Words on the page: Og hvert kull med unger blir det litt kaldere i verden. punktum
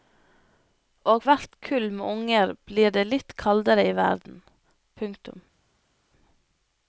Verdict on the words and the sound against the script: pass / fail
pass